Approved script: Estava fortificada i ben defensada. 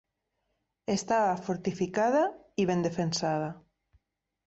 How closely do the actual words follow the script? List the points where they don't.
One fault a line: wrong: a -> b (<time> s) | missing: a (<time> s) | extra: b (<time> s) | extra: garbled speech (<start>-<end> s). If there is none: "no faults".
no faults